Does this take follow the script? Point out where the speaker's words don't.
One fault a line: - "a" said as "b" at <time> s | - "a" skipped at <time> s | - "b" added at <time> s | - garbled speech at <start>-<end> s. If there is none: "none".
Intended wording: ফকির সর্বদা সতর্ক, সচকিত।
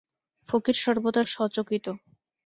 - "সতর্ক" skipped at 1.2 s